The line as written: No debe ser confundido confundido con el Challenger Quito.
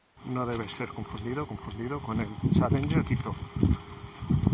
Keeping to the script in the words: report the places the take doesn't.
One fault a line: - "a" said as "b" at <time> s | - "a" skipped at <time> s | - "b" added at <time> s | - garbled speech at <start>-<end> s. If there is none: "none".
none